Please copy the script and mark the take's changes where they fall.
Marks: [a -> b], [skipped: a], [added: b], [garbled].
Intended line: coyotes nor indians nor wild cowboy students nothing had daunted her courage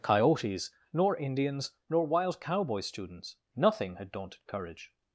coyotes nor indians nor wild cowboy students nothing had daunted [skipped: her] courage